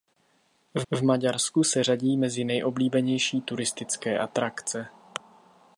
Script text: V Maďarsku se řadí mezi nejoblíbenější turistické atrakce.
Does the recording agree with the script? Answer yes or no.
no